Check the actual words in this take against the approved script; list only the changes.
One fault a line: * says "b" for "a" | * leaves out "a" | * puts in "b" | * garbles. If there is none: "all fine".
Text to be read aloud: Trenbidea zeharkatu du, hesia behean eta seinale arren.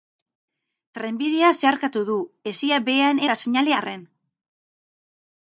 all fine